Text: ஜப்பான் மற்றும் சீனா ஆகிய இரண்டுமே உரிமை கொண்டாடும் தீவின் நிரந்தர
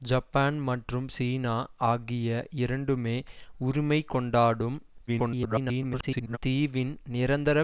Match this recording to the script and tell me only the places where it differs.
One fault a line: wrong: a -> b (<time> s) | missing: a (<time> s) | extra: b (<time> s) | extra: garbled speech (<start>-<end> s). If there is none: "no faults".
extra: garbled speech (5.1-6.4 s)